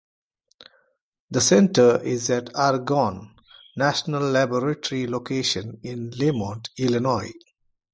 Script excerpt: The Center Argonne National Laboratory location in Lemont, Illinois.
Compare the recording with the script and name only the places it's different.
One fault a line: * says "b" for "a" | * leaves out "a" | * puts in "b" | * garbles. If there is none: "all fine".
* puts in "is at"